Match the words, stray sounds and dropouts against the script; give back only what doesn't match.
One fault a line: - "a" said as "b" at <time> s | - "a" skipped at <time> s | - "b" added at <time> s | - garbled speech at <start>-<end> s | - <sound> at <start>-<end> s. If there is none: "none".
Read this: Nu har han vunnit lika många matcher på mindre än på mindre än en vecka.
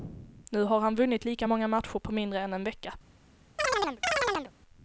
- "på mindre än" skipped at 2.5 s
- chirp at 3.6-4.5 s